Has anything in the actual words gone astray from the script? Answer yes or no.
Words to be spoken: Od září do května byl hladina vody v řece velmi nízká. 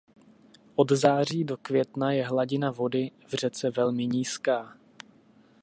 yes